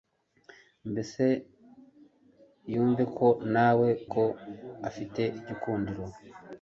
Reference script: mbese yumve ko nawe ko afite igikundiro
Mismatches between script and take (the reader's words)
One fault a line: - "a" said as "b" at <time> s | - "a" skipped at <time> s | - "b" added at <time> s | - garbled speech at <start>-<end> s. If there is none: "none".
none